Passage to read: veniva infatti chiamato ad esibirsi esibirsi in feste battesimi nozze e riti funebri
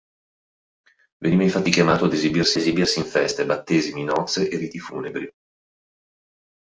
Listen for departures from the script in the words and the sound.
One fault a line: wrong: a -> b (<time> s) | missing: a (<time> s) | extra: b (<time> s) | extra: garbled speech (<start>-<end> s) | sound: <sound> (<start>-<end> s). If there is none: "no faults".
no faults